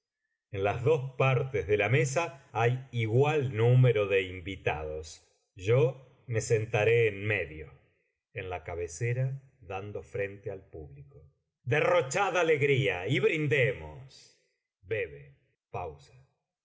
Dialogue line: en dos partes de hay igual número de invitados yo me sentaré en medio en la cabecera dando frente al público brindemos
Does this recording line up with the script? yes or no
no